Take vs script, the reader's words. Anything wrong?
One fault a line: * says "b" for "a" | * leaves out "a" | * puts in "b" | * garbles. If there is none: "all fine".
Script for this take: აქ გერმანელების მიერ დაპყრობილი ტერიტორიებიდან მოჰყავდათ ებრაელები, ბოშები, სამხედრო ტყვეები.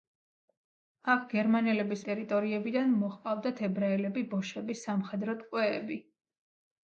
* leaves out "მიერ დაპყრობილი"